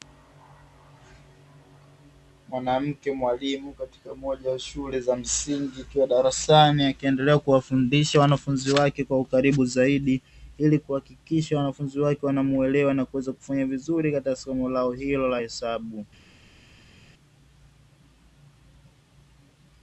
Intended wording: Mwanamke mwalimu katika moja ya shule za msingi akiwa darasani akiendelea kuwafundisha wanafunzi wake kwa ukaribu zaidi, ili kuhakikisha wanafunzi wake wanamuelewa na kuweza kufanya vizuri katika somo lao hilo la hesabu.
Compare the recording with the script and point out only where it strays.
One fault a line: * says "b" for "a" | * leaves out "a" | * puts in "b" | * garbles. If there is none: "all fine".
all fine